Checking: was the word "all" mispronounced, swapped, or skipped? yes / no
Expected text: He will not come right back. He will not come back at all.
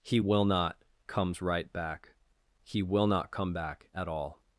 no